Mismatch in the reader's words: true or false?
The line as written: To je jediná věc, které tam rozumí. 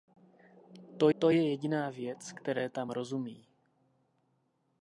true